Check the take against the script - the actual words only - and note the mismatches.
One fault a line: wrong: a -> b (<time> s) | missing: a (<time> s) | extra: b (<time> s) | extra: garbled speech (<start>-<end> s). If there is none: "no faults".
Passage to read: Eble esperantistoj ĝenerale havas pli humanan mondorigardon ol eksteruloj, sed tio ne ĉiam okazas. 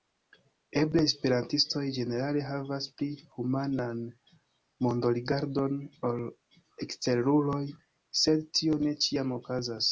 no faults